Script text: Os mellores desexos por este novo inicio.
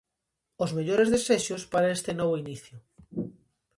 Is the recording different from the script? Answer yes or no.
yes